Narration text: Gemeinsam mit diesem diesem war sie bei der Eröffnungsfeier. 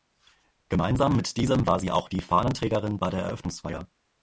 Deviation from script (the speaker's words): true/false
true